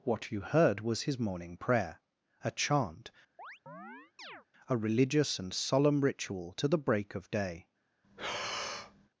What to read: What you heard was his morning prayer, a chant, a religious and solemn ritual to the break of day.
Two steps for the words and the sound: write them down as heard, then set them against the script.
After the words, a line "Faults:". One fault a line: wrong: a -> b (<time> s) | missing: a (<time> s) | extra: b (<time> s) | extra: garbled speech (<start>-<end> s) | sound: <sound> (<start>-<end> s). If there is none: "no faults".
What you heard was his morning prayer, a chant, a religious and solemn ritual to the break of day.
Faults:
sound: chirp (3.4-4.5 s)
sound: breath (8.0-9.1 s)